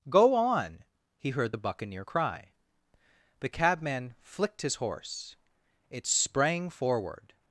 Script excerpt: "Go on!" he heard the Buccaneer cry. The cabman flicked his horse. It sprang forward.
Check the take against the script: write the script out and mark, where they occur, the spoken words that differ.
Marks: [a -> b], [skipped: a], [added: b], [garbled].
"Go on!" he heard the Buccaneer cry. The cabman flicked his horse. It sprang forward.